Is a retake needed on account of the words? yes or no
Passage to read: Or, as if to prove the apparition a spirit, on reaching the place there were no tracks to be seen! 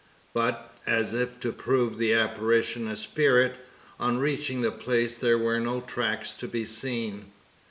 yes